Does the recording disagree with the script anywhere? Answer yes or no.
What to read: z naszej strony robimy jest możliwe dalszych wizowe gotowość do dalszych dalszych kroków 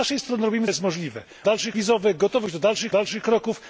no